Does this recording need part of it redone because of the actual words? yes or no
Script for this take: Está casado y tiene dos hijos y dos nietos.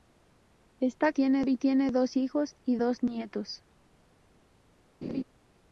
yes